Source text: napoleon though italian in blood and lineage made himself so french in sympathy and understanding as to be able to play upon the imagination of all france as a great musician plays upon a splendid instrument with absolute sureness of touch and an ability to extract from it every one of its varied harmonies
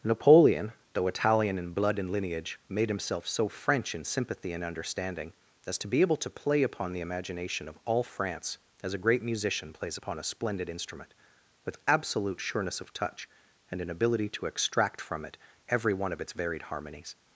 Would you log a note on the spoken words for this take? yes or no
no